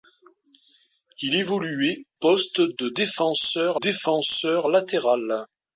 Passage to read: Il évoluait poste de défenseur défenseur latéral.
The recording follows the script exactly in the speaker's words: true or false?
true